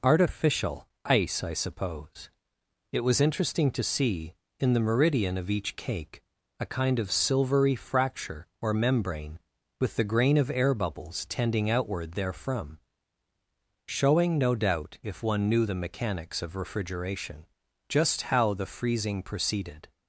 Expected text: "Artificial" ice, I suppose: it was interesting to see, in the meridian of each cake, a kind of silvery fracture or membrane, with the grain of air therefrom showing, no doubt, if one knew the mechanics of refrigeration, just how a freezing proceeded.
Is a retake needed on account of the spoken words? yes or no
yes